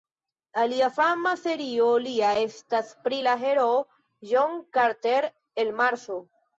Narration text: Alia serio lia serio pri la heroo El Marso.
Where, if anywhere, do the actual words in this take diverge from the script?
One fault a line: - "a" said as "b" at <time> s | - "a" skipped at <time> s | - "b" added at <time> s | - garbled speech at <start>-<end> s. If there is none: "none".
- "fama" added at 1.0 s
- "serio" said as "estas" at 2.4 s
- "John Carter" added at 4.3 s